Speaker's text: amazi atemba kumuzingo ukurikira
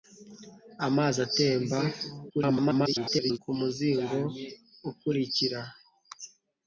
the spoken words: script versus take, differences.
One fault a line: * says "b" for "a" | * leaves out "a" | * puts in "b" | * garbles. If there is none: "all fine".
* garbles